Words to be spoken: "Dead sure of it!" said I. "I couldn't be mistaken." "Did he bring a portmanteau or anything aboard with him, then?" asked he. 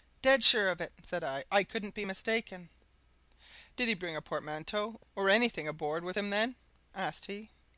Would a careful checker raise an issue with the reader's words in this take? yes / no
no